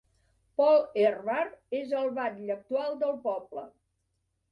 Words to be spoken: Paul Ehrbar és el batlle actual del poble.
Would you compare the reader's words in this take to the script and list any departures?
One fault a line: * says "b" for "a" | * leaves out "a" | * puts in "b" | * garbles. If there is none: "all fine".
all fine